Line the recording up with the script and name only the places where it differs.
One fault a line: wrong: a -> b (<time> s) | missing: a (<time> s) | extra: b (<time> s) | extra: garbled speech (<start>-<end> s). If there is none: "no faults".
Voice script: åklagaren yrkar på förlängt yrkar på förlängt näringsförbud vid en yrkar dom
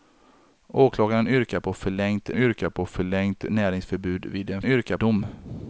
no faults